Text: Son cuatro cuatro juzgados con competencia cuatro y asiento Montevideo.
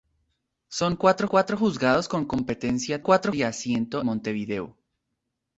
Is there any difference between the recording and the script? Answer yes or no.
no